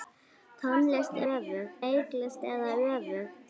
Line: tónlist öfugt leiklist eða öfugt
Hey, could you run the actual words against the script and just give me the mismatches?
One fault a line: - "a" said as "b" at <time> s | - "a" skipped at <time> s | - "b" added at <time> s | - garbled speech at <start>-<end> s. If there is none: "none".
none